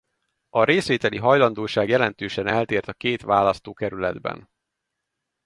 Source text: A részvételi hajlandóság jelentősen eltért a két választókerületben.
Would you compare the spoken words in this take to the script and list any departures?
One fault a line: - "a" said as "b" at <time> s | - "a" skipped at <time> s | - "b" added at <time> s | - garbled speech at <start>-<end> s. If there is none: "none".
none